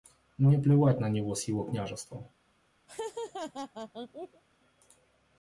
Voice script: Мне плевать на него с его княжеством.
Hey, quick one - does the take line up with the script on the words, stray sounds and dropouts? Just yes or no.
no